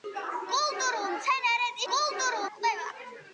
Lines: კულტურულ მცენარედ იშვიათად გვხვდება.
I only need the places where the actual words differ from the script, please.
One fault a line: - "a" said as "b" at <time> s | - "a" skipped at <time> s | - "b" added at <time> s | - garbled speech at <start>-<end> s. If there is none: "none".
- "იშვიათად" said as "კულტურულ" at 1.9 s